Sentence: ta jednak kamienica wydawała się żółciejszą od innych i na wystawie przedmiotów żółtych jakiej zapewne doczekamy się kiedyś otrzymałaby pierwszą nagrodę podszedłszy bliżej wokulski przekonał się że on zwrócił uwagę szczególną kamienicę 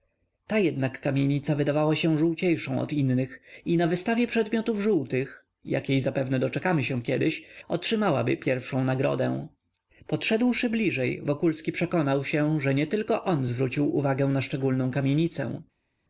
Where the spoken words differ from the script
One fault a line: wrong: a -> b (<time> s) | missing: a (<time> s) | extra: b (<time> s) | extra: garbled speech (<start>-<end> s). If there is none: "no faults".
extra: nietylko (12.7 s)
extra: na (14.3 s)